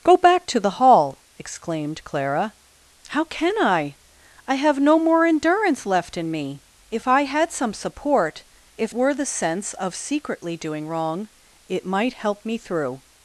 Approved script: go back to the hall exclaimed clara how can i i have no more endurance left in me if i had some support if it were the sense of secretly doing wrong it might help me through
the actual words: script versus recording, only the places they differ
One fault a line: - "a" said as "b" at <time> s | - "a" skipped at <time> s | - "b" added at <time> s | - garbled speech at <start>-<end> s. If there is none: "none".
- "it" skipped at 8.9 s